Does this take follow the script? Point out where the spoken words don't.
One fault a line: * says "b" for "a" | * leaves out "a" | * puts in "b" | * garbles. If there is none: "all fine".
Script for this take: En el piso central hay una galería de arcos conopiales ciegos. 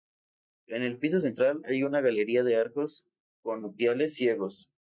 all fine